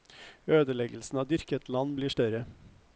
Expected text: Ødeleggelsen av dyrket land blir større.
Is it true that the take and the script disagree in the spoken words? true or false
false